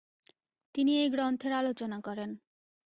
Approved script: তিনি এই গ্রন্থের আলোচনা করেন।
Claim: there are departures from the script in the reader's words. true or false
false